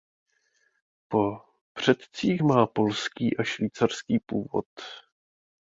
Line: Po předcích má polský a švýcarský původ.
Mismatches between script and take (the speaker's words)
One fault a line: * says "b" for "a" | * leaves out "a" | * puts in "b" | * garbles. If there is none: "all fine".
all fine